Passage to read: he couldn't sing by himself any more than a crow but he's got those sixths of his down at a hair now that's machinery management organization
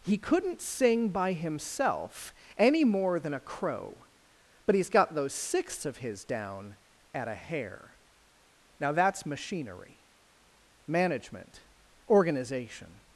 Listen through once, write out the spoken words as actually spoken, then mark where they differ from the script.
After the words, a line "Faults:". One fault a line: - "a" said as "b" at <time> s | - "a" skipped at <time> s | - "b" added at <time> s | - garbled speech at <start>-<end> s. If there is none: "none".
he couldn't sing by himself any more than a crow but he's got those sixths of his down at a hair now that's machinery management organization
Faults:
none